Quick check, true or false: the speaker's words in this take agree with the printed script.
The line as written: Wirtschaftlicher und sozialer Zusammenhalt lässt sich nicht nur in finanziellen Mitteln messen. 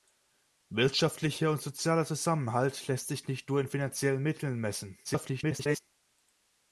false